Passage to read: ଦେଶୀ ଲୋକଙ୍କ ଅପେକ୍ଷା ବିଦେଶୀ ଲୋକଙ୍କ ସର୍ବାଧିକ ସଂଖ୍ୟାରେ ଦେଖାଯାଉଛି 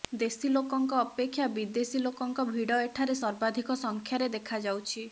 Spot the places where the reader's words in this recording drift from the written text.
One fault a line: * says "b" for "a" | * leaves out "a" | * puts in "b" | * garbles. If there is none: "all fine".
* puts in "ଭିଡ଼ ଏଠାରେ"